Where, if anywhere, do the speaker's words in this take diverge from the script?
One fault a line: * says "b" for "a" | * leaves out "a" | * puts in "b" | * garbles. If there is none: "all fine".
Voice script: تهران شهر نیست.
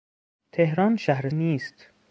all fine